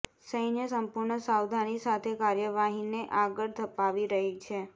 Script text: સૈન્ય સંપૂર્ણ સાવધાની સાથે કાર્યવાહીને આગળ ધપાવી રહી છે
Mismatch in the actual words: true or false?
false